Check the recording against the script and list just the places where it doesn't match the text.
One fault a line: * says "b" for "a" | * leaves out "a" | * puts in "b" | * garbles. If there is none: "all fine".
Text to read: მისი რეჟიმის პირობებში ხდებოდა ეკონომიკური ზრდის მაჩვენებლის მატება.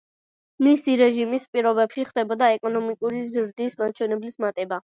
all fine